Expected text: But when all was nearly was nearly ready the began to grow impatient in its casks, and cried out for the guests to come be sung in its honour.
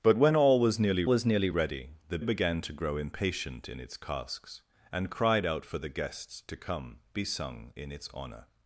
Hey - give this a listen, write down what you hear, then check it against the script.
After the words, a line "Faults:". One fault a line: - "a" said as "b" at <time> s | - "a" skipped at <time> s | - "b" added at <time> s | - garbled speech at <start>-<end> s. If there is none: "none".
But when all was nearly was nearly ready the began to grow impatient in its casks, and cried out for the guests to come be sung in its honour.
Faults:
none